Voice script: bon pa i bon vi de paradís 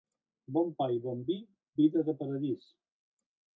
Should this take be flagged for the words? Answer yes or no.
yes